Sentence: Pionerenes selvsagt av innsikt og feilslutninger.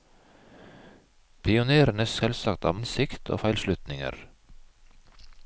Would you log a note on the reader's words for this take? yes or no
no